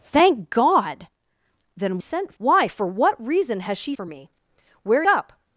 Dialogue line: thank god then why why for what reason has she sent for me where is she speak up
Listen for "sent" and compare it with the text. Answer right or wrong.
wrong